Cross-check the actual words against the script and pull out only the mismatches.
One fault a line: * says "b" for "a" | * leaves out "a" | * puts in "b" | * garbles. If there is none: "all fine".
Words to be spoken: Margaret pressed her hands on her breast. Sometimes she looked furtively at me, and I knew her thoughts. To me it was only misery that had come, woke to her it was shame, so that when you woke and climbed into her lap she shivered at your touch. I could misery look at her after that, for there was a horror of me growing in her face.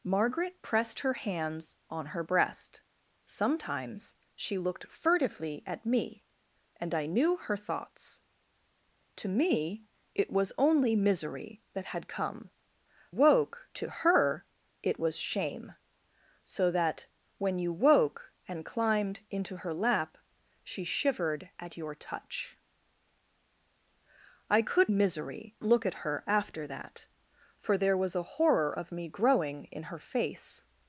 all fine